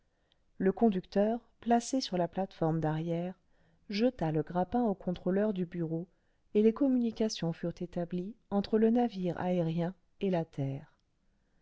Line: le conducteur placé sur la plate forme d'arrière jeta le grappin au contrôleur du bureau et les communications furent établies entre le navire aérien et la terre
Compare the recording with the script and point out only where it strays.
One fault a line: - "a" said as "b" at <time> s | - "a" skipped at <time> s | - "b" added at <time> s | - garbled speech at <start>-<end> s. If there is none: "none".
none